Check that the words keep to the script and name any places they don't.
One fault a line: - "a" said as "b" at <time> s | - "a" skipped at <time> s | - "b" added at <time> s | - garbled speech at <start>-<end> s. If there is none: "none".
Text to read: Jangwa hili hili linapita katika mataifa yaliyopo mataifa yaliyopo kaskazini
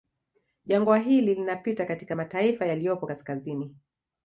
- "hili" skipped at 1.4 s
- "mataifa yaliyopo" skipped at 3.1 s